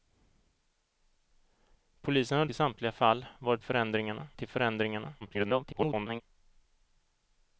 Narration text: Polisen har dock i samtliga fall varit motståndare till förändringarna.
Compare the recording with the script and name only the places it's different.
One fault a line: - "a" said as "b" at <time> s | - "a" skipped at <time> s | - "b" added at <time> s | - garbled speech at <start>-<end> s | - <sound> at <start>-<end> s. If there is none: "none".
- "dock" skipped at 2.5 s
- "motståndare" said as "förändringarna" at 3.6 s
- garbled speech at 5.2-6.2 s